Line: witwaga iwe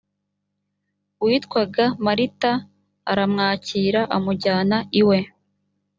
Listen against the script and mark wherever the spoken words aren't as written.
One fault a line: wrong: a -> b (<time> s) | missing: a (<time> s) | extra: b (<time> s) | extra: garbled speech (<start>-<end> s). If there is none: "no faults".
extra: marita aramwakira amujyana (2.0 s)